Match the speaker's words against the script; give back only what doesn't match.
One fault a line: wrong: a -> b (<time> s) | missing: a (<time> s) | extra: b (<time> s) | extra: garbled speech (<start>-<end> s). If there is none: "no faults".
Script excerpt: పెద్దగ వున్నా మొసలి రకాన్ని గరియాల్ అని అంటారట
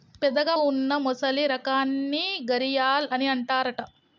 no faults